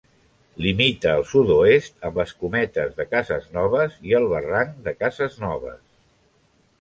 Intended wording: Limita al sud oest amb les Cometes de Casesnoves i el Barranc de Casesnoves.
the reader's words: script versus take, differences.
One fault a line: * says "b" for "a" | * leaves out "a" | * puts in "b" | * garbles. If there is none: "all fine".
all fine